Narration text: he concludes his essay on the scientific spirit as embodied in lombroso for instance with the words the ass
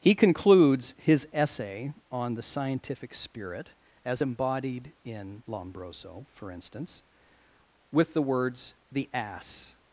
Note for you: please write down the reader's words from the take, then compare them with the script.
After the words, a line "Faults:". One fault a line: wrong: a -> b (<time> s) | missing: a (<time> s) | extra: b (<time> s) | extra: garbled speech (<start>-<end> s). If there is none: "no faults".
he concludes his essay on the scientific spirit as embodied in lombroso for instance with the words the ass
Faults:
no faults